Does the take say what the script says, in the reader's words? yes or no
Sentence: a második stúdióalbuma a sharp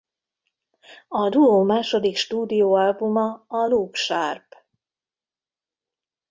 no